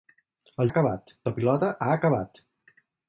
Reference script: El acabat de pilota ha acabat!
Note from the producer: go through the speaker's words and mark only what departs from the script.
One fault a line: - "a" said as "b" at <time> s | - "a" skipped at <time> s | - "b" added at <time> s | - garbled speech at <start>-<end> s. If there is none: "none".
none